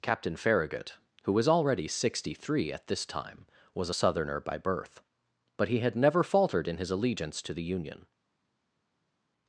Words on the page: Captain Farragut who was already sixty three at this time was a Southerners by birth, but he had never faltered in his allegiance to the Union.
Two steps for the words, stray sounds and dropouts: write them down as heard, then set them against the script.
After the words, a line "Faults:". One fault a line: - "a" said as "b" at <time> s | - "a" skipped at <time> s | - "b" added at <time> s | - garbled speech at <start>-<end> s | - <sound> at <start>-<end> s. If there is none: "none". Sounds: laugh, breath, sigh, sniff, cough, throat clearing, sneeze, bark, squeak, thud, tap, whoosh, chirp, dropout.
Captain Farragut who was already sixty three at this time was a Southerner by birth, but he had never faltered in his allegiance to the Union.
Faults:
- "Southerners" said as "Southerner" at 3.9 s